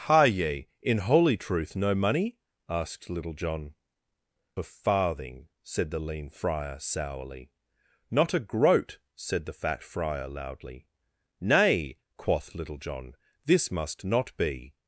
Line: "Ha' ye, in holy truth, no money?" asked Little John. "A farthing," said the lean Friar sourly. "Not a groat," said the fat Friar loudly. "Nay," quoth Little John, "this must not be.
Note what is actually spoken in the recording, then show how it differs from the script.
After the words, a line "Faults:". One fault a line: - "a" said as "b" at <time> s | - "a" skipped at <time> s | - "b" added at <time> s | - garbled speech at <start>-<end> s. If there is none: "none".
"Ha' ye, in holy truth, no money?" asked Little John. "A farthing," said the lean Friar sourly. "Not a groat," said the fat Friar loudly. "Nay," quoth Little John, "this must not be.
Faults:
none